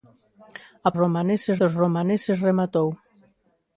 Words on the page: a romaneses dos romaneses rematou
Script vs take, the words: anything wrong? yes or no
no